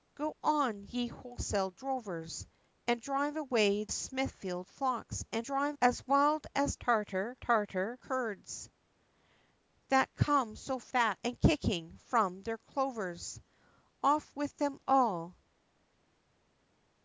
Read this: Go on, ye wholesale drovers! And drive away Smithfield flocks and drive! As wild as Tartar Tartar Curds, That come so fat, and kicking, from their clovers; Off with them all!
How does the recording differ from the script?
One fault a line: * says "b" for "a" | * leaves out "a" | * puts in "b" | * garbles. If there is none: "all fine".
all fine